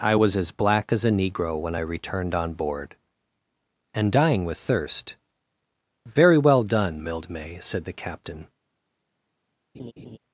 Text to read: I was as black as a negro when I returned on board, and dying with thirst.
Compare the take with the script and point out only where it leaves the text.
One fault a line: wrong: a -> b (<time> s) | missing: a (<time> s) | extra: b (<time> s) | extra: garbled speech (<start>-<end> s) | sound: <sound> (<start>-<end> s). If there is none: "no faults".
extra: Very well done Mildmay said the captain (6.1 s)
sound: laugh (9.7-10.2 s)